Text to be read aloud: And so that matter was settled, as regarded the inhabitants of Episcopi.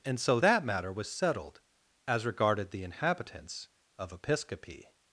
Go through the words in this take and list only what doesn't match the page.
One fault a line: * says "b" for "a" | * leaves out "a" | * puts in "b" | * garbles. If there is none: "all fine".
all fine